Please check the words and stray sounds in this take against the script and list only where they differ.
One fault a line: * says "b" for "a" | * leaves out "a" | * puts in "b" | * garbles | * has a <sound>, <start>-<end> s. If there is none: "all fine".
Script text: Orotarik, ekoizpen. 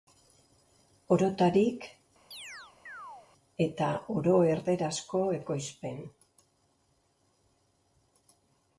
* has a chirp, 2.3-3.3 s
* puts in "eta oro erdarazko"